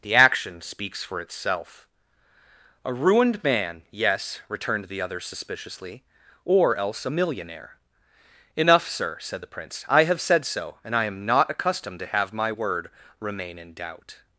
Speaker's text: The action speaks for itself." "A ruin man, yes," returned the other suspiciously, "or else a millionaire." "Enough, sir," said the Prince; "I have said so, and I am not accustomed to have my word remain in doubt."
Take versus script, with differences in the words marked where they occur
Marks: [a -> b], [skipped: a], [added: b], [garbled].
The action speaks for itself." "A [ruin -> ruined] man, yes," returned the other suspiciously, "or else a millionaire." "Enough, sir," said the Prince; "I have said so, and I am not accustomed to have my word remain in doubt."